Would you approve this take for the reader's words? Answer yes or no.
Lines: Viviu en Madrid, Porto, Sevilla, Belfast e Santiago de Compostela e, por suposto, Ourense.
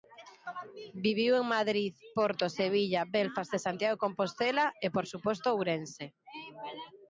yes